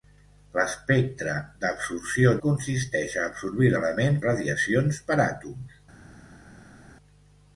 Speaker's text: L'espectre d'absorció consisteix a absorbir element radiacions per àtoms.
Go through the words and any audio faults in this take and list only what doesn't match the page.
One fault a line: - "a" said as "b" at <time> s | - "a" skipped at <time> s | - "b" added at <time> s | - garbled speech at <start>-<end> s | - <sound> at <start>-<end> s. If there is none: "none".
none